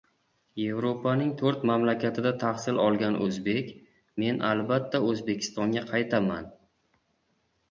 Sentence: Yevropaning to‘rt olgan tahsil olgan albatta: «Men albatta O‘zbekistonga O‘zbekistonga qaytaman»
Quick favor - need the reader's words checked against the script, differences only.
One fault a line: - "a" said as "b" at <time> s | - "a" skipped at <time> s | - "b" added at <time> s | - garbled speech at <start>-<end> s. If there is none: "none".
- "olgan" said as "mamlakatida" at 1.7 s
- "albatta" said as "o‘zbek" at 3.2 s
- "O‘zbekistonga" skipped at 5.8 s